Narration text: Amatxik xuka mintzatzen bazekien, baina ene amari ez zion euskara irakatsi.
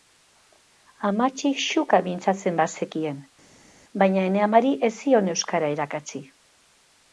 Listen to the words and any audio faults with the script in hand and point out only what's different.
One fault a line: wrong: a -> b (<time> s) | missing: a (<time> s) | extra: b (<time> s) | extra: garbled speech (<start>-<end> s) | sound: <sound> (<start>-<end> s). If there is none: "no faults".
no faults